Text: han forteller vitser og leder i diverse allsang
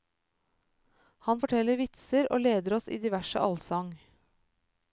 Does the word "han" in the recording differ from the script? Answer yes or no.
no